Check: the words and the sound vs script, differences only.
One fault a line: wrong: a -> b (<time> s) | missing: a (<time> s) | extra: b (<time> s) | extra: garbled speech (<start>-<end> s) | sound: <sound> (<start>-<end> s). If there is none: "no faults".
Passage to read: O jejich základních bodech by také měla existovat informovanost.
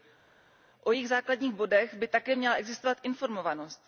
no faults